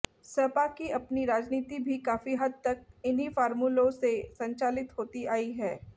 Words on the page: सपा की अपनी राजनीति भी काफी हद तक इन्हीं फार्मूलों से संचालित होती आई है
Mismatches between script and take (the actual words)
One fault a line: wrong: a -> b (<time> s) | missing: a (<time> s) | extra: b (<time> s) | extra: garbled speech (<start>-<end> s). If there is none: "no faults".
no faults